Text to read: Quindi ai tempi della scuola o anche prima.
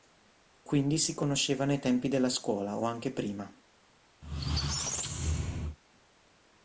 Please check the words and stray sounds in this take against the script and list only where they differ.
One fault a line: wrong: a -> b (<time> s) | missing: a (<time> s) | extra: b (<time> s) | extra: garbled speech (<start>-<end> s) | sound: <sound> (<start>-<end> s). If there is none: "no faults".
extra: si conoscevano (1.0 s)
sound: squeak (4.2-5.8 s)